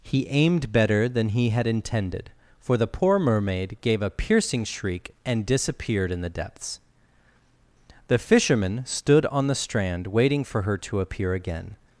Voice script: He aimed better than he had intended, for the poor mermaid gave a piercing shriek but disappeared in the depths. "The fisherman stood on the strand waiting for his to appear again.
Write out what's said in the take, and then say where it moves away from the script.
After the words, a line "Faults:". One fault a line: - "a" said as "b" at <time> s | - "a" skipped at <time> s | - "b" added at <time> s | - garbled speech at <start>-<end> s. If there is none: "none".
He aimed better than he had intended, for the poor mermaid gave a piercing shriek and disappeared in the depths. "The fisherman stood on the strand waiting for her to appear again.
Faults:
- "but" said as "and" at 5.2 s
- "his" said as "her" at 10.6 s